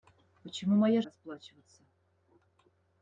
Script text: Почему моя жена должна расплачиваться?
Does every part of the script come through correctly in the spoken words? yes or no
no